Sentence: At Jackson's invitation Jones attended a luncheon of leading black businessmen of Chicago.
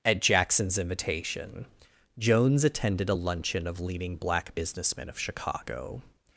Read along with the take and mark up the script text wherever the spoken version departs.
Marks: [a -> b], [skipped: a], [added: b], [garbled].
At Jackson's invitation Jones attended a luncheon of leading black businessmen of Chicago.